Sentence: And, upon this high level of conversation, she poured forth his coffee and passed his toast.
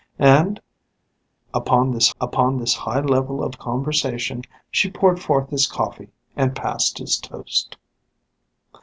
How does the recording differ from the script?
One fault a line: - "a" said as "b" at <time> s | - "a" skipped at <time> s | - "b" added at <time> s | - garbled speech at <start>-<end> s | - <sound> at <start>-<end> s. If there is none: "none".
- "upon this" added at 2.2 s